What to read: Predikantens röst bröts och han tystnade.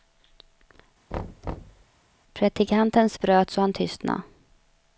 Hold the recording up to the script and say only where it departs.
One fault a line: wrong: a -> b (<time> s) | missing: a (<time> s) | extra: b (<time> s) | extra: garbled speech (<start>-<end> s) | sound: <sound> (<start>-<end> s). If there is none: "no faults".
sound: thud (1.1-1.9 s)
missing: röst (3.2 s)